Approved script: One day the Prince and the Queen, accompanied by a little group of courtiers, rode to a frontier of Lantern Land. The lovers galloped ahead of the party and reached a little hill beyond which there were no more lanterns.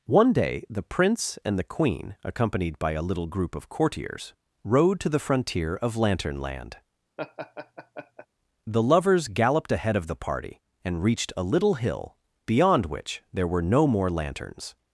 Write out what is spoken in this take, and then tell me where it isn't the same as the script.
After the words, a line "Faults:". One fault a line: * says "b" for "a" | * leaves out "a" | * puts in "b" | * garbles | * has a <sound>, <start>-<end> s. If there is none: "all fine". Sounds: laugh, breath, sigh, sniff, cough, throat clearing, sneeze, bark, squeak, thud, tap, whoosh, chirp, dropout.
One day the Prince and the Queen, accompanied by a little group of courtiers, rode to the frontier of Lantern Land. The lovers galloped ahead of the party and reached a little hill beyond which there were no more lanterns.
Faults:
* says "the" for "a"
* has a laugh, 7.2-8.3 s